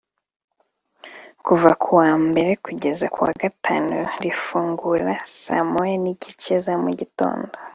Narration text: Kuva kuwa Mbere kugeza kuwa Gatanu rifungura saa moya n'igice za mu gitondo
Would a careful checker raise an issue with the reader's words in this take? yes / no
no